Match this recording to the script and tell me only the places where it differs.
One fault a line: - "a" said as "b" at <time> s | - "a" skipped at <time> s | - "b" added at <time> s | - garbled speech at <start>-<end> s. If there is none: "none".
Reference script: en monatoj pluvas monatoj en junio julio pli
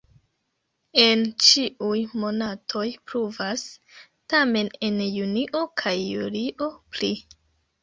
- "ĉiuj" added at 1.5 s
- "monatoj" said as "tamen" at 4.4 s
- "kaj" added at 5.8 s